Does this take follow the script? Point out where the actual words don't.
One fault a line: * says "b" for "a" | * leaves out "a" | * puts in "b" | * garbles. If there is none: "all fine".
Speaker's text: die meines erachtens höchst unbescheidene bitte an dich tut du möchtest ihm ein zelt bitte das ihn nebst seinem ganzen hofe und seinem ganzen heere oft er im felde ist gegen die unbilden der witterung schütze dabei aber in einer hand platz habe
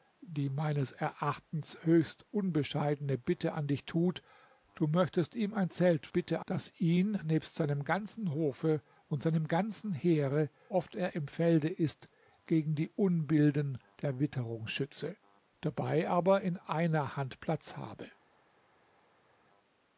all fine